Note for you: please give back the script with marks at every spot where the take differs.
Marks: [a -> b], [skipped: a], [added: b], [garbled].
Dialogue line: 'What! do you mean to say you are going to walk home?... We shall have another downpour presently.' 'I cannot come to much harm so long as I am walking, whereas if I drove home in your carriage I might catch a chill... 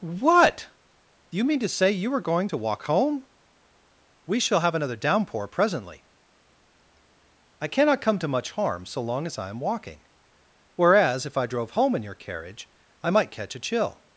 'What! do you mean to say you are going to walk home?... We shall have another downpour presently.' 'I cannot come to much harm so long as I am walking, whereas if I drove home in your carriage I might catch a chill...